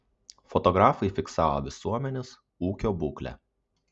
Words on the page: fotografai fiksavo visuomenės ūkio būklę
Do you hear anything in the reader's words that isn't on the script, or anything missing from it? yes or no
no